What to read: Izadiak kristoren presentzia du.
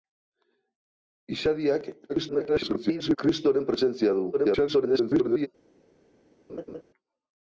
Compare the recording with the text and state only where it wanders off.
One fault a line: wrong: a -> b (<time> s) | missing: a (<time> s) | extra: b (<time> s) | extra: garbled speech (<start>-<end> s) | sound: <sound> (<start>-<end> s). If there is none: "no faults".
extra: garbled speech (2.1-3.2 s)
extra: garbled speech (4.3-5.5 s)
sound: laugh (6.5-6.8 s)